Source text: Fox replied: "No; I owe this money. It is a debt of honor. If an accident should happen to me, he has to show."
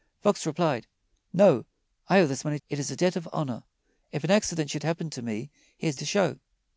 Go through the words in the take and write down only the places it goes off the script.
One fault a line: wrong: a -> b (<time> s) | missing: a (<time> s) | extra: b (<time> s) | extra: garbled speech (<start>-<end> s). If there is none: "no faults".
no faults